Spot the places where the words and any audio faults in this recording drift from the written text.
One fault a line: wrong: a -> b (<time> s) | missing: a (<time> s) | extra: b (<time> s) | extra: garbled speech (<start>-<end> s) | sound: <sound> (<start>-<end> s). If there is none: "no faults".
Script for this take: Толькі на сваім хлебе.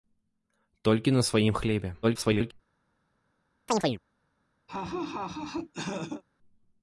extra: garbled speech (2.0-2.5 s)
sound: chirp (3.7-4.0 s)
sound: laugh (4.7-6.2 s)